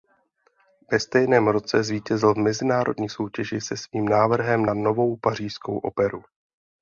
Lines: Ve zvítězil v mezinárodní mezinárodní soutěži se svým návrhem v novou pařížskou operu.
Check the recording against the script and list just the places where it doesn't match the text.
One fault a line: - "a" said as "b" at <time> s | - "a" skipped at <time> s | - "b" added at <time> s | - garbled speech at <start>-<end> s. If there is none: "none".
- "stejném roce" added at 1.0 s
- "mezinárodní" skipped at 3.1 s
- "v" said as "na" at 4.6 s